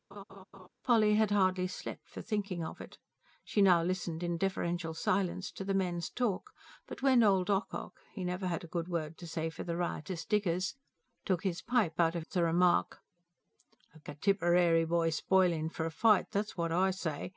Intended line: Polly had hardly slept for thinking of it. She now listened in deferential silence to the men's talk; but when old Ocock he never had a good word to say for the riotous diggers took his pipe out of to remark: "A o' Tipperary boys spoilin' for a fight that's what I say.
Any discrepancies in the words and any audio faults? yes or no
yes